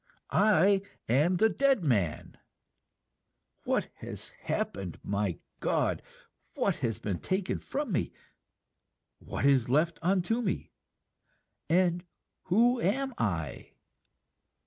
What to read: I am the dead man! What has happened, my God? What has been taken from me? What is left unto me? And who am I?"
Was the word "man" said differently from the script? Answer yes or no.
no